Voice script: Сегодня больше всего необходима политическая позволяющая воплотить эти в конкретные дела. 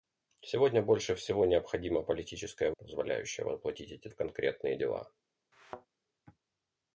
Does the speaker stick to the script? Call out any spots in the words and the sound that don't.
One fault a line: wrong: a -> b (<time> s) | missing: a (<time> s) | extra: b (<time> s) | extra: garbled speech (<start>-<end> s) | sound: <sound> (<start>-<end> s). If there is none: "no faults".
sound: thud (5.5-5.9 s)